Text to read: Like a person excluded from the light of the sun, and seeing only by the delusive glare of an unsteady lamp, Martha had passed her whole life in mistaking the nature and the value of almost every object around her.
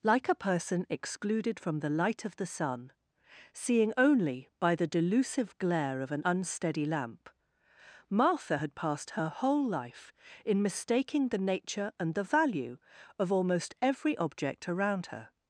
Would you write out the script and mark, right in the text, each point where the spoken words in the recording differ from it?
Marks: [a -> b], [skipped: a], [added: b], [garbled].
Like a person excluded from the light of the sun, [skipped: and] seeing only by the delusive glare of an unsteady lamp, Martha had passed her whole life in mistaking the nature and the value of almost every object around her.